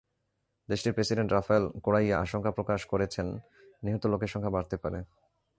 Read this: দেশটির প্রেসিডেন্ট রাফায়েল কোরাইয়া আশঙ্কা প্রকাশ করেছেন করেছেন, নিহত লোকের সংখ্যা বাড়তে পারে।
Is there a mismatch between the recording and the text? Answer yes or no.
yes